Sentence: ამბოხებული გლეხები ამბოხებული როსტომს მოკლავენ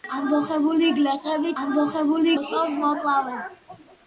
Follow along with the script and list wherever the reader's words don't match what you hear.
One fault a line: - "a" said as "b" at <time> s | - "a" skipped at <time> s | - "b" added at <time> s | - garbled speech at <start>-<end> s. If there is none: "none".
none